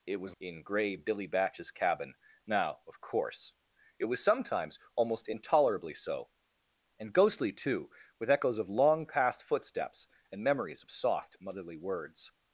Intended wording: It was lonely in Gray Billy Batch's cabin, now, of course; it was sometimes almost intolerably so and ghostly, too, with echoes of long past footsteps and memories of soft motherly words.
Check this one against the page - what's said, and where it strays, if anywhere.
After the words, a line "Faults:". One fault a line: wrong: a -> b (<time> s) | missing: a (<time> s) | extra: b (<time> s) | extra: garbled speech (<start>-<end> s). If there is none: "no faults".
It was in Gray Billy Batch's cabin, now, of course; it was sometimes almost intolerably so and ghostly, too, with echoes of long past footsteps and memories of soft motherly words.
Faults:
missing: lonely (0.3 s)